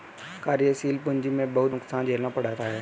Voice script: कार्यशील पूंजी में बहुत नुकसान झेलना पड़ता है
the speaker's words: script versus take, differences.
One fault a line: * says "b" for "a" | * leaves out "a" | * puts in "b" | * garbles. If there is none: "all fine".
all fine